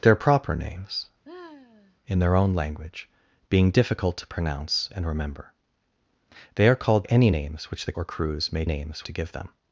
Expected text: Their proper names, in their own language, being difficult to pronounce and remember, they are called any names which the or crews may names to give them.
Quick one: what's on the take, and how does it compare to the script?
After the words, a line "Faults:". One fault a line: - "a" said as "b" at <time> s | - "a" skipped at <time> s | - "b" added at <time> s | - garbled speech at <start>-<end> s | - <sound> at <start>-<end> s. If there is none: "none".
Their proper names, in their own language, being difficult to pronounce and remember, they are called any names which the or crews may names to give them.
Faults:
- sigh at 1.2-2.0 s